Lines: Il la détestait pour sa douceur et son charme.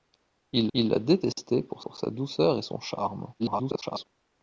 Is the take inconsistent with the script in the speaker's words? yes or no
yes